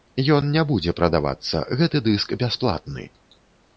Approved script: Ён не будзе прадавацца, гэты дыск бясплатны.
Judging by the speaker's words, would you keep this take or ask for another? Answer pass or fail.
pass